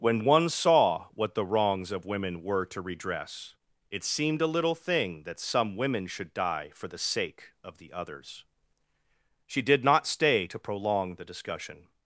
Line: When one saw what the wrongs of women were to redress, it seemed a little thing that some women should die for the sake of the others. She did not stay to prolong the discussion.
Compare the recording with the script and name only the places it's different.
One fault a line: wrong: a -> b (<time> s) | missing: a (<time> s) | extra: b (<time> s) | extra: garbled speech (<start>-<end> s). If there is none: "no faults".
no faults